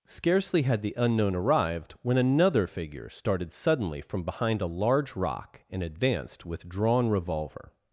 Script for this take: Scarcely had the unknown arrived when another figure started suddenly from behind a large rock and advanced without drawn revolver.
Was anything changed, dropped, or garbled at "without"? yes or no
yes